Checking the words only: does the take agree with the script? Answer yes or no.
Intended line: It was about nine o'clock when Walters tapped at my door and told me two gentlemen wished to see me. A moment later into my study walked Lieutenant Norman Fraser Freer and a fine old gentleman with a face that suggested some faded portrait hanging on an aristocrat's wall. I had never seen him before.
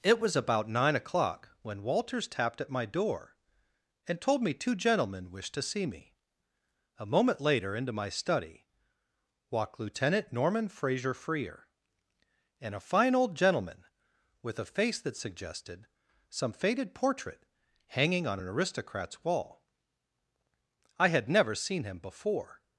yes